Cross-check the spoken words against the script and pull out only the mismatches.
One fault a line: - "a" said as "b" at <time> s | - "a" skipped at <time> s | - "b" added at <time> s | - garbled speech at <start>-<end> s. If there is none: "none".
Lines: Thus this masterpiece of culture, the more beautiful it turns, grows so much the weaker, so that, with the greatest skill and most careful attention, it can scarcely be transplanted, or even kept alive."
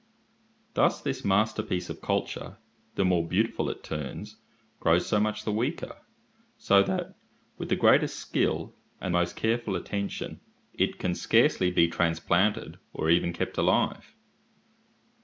none